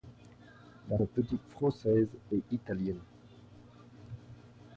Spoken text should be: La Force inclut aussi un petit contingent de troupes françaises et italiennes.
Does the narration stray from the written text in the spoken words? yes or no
yes